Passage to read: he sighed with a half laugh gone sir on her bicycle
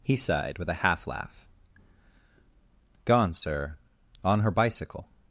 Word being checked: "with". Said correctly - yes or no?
yes